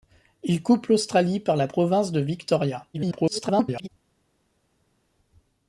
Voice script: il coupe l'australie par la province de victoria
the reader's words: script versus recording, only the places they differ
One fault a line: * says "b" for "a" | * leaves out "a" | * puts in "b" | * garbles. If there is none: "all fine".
* garbles